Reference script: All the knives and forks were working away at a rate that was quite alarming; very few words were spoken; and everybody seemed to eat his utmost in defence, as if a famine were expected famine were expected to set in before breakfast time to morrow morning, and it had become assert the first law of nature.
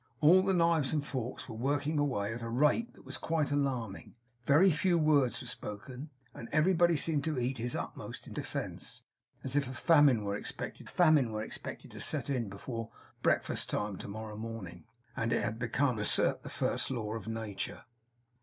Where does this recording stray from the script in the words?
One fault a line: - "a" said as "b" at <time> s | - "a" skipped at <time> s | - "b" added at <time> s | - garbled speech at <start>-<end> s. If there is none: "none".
none